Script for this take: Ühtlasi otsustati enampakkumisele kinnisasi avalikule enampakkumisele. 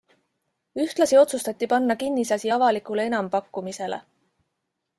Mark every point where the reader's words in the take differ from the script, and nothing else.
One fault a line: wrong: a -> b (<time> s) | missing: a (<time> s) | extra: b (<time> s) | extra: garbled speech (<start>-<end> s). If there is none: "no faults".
wrong: enampakkumisele -> panna (1.7 s)